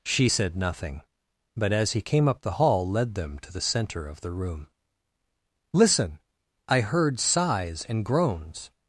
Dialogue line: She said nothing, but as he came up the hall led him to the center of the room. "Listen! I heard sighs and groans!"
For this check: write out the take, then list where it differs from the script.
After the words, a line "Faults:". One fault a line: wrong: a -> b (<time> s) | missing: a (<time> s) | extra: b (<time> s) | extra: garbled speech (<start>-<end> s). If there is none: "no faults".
She said nothing, but as he came up the hall led them to the center of the room. "Listen! I heard sighs and groans!"
Faults:
wrong: him -> them (3.1 s)